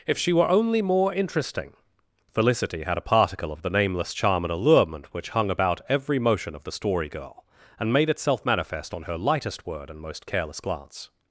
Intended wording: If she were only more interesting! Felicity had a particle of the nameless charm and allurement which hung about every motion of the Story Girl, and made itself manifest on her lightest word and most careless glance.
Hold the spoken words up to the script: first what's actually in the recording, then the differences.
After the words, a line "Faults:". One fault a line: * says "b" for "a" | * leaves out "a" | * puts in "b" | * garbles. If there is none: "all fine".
If she were only more interesting! Felicity had a particle of the nameless charm and allurement which hung about every motion of the Story Girl, and made itself manifest on her lightest word and most careless glance.
Faults:
all fine